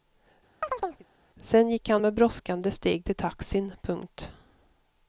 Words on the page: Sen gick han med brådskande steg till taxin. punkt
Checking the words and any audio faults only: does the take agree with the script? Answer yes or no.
no